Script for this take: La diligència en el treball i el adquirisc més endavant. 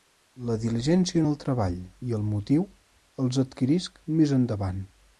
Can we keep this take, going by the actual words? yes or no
no